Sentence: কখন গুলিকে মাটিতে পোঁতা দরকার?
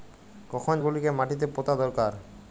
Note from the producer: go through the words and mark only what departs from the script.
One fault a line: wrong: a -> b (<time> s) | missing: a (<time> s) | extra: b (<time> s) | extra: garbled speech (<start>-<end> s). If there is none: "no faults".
no faults